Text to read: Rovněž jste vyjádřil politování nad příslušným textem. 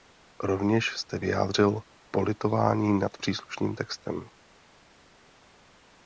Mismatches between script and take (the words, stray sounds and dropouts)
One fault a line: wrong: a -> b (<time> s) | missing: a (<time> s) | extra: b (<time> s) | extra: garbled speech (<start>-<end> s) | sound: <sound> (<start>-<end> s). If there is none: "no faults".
no faults